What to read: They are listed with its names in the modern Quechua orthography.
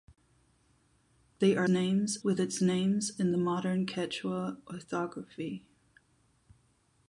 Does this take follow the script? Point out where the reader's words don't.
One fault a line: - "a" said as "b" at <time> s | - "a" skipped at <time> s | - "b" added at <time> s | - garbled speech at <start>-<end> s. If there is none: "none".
- "listed" said as "names" at 1.7 s